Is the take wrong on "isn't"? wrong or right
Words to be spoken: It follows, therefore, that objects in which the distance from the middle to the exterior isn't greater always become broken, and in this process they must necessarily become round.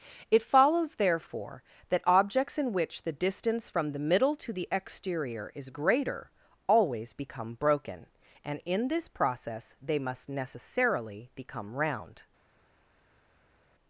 wrong